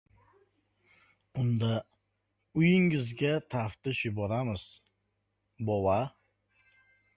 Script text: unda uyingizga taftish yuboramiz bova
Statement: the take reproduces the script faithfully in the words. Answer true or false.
true